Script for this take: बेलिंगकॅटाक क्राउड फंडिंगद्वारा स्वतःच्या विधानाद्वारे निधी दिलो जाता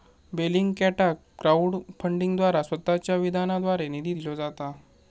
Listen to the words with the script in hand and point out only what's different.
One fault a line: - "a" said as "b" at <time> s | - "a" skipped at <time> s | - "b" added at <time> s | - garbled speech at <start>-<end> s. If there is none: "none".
none